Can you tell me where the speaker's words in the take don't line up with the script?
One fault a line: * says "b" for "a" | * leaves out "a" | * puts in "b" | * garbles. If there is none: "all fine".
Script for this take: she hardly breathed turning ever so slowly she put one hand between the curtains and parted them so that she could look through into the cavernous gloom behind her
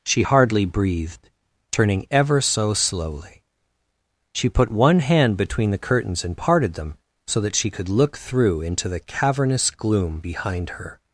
all fine